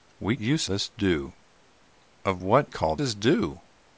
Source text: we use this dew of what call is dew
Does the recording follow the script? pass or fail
pass